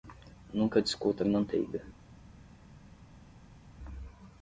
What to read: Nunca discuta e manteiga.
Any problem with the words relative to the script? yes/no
no